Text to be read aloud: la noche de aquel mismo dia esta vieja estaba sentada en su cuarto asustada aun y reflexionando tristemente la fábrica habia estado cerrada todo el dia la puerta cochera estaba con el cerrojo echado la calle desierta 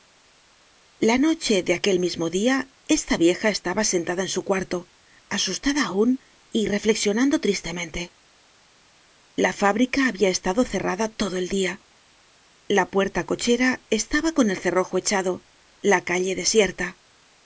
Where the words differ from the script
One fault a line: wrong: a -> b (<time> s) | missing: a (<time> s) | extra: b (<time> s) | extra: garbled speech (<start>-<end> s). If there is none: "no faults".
no faults